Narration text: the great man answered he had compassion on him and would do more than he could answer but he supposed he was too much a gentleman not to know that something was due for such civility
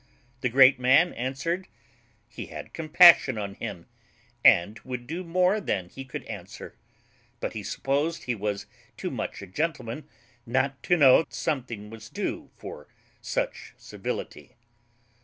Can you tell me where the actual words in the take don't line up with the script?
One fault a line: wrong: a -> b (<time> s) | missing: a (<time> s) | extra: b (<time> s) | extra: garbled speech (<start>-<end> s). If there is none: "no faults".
missing: that (11.2 s)